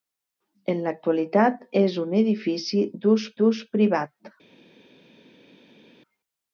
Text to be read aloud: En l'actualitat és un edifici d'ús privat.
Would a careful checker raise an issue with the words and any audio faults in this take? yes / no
yes